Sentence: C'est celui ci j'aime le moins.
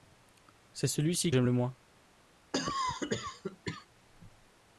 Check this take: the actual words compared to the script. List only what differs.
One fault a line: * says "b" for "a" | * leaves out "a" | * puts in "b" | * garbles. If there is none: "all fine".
all fine